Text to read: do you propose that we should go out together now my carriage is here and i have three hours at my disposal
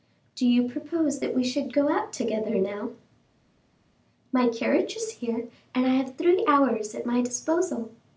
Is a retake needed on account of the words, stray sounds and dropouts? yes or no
no